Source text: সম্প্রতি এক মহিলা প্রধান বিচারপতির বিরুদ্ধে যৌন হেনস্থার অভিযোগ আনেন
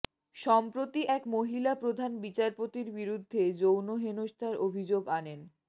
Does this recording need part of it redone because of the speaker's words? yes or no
no